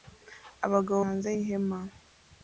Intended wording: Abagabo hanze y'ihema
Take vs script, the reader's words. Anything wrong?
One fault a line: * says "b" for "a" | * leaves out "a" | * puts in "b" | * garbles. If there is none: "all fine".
all fine